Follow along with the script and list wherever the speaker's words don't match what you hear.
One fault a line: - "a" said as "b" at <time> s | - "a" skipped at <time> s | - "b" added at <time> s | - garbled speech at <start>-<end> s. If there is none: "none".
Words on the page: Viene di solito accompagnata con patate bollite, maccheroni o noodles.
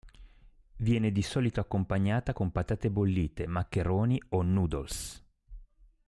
none